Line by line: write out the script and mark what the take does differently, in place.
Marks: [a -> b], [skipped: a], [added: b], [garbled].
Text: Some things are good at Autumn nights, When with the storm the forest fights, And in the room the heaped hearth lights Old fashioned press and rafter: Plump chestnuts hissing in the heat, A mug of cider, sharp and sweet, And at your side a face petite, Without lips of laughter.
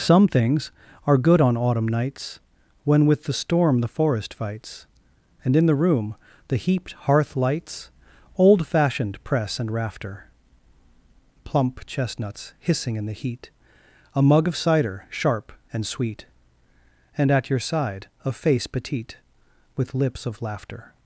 Some things are good [at -> on] Autumn nights, When with the storm the forest fights, And in the room the heaped hearth lights Old fashioned press and rafter: Plump chestnuts hissing in the heat, A mug of cider, sharp and sweet, And at your side a face petite, [Without -> With] lips of laughter.